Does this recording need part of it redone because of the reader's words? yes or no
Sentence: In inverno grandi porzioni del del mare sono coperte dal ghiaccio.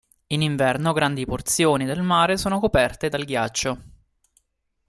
yes